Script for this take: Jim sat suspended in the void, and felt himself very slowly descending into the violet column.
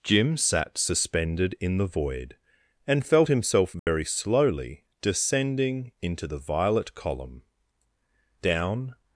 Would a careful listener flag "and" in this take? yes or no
no